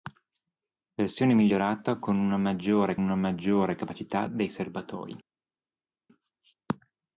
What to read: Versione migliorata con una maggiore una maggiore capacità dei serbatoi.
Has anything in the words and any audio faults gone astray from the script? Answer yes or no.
no